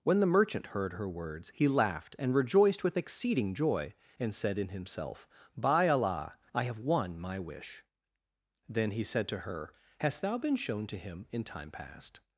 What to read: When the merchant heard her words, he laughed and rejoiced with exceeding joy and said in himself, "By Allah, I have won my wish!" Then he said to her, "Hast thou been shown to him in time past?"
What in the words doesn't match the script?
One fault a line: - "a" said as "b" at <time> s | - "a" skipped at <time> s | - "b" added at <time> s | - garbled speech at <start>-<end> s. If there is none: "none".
none